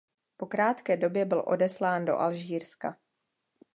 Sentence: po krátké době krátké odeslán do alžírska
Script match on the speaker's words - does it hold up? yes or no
no